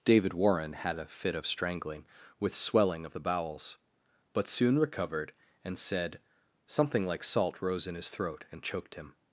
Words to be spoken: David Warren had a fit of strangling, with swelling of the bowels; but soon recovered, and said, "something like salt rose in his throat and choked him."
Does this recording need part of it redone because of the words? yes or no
no